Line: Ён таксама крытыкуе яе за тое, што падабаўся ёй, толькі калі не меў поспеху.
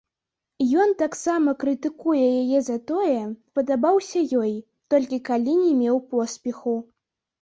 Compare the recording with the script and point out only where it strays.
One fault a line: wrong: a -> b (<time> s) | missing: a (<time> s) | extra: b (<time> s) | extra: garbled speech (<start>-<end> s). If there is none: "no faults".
missing: што (3.2 s)